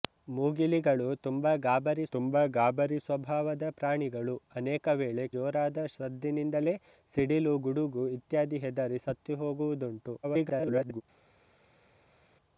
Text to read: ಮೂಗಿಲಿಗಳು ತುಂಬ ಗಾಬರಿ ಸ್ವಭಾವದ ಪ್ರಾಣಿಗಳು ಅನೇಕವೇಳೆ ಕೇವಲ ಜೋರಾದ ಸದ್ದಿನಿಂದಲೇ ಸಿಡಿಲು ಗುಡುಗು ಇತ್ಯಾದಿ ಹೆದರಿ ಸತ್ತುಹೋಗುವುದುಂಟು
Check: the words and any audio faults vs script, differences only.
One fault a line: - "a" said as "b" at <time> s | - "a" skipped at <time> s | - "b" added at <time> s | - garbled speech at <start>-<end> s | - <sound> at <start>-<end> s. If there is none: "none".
- "ತುಂಬ ಗಾಬರಿ" added at 2.1 s
- "ಕೇವಲ" skipped at 5.2 s
- garbled speech at 10.2-11.0 s